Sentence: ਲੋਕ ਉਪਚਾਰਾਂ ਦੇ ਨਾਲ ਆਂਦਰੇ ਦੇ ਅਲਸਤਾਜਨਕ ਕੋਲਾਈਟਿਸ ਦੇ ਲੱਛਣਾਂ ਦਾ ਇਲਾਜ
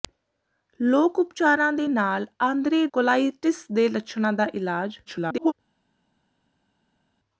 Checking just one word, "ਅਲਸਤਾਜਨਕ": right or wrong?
wrong